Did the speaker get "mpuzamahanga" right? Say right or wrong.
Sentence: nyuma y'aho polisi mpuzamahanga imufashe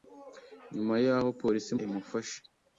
wrong